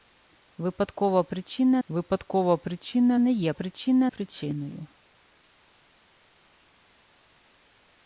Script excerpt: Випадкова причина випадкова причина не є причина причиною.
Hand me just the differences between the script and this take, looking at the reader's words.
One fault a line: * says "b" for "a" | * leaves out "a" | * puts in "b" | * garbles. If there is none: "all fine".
all fine